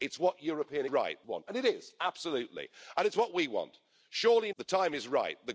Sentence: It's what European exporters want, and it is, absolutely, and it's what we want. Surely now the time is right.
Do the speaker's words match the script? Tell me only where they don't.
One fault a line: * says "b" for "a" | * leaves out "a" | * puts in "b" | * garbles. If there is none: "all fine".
* says "right" for "exporters"
* leaves out "now"